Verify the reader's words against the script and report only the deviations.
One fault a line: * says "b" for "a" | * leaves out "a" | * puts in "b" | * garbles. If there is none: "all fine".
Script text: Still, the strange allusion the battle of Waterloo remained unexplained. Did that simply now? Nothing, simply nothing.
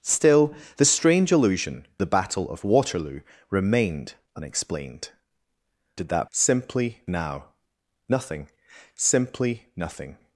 all fine